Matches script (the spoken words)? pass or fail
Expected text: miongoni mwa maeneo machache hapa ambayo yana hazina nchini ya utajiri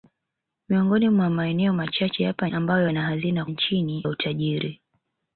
pass